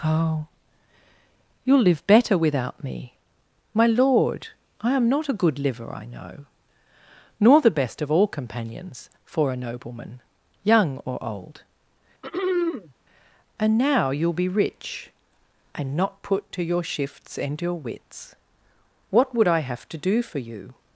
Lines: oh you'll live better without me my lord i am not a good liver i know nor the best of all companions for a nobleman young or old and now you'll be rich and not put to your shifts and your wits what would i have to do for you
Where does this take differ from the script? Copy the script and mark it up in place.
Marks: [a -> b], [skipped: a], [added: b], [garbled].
oh you'll live better without me my lord i am not a good liver i know nor the best of all companions for a nobleman young or old and now you'll be rich and not put to your shifts and your wits what would i have to do for you